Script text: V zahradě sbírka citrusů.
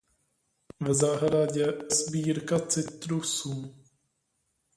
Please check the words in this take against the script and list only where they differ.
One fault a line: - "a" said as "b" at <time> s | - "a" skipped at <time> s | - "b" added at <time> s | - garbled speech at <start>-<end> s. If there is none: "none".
none